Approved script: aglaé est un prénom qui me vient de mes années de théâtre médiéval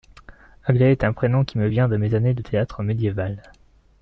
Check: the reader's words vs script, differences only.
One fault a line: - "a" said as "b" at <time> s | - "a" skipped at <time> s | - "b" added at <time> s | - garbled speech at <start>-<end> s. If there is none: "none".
none